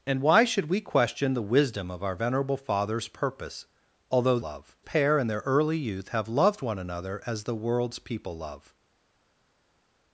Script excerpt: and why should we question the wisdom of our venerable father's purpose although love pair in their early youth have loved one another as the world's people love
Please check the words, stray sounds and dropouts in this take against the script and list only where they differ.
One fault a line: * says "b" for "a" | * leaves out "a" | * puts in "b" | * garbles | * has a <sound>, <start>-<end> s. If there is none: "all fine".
all fine